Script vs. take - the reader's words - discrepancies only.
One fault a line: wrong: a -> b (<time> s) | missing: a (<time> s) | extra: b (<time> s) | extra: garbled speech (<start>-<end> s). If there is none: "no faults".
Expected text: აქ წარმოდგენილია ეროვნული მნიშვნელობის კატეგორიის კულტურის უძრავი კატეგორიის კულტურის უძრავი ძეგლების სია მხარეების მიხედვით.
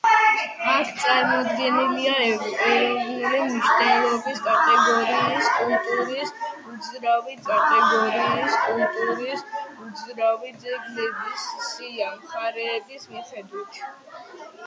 no faults